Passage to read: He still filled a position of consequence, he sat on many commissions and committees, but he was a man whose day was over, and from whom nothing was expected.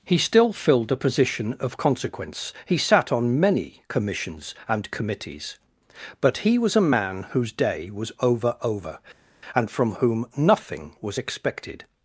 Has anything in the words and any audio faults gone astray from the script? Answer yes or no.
yes